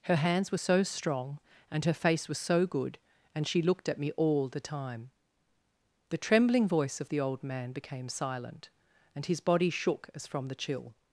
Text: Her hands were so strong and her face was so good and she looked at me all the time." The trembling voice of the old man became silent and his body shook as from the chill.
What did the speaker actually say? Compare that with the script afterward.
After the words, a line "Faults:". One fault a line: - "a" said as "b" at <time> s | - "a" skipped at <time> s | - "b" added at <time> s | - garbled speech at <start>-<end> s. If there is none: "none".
Her hands were so strong and her face was so good and she looked at me all the time." The trembling voice of the old man became silent and his body shook as from the chill.
Faults:
none